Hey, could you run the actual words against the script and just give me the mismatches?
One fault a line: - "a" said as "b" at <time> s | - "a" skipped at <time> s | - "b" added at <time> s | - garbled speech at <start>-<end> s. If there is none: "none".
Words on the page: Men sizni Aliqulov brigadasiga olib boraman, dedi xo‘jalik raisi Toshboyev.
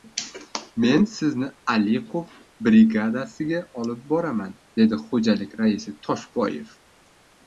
none